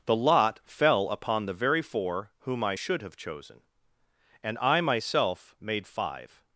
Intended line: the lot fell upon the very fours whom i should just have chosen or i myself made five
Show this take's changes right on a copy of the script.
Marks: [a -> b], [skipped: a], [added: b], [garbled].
the lot fell upon the very [fours -> four] whom i should [skipped: just] have chosen [or -> and] i myself made five